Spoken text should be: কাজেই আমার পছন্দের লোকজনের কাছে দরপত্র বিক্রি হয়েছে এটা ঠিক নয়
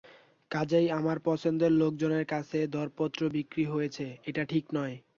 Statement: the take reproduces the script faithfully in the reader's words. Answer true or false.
true